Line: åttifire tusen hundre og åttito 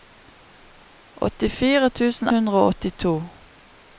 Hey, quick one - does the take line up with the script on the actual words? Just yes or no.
yes